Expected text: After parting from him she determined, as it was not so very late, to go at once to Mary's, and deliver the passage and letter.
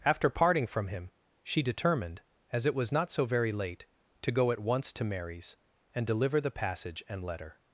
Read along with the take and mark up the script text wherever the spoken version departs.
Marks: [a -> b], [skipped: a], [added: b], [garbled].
After parting from him she determined, as it was not so very late, to go at once to Mary's, and deliver the passage and letter.